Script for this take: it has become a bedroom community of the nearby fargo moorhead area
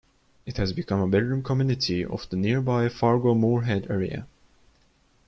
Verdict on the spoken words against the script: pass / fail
pass